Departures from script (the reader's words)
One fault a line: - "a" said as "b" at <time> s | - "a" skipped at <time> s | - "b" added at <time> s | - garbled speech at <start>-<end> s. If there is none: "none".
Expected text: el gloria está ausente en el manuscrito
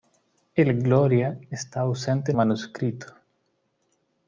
- "el" skipped at 2.4 s